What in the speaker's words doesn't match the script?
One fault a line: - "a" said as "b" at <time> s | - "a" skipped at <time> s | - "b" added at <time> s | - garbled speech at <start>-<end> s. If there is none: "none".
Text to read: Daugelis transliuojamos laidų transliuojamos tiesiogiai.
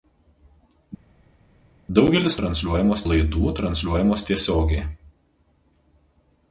none